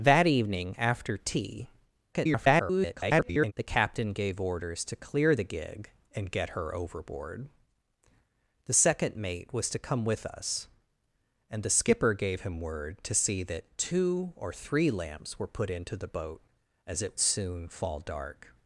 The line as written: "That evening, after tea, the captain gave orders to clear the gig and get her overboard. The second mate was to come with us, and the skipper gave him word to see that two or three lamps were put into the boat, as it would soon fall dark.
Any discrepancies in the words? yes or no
yes